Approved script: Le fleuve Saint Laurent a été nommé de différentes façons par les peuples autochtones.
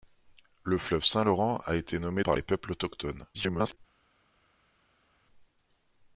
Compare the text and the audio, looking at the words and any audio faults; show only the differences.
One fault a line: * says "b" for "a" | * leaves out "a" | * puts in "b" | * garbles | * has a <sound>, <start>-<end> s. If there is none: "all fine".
* leaves out "de différentes façons"
* garbles